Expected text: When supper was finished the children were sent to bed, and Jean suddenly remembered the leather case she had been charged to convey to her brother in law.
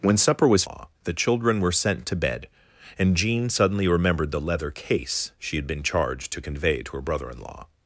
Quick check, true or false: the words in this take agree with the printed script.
false